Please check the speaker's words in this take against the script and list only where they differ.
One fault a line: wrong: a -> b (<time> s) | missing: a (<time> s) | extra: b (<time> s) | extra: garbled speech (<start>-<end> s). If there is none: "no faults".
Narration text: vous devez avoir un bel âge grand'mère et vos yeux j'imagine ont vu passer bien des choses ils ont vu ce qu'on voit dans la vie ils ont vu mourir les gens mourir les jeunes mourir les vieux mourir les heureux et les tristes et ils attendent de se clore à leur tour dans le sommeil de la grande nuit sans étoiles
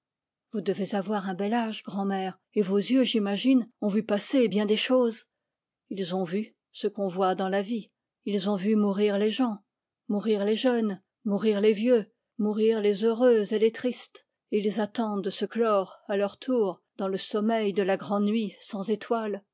no faults